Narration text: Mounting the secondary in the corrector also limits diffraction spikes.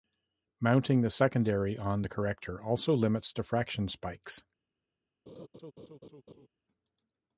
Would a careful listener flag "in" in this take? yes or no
yes